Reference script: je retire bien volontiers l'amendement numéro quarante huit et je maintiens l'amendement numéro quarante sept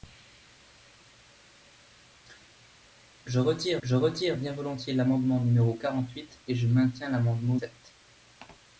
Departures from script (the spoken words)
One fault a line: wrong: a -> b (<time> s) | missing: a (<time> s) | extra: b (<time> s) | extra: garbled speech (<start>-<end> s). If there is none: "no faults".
extra: je retire (3.8 s)
missing: numéro quarante (7.6 s)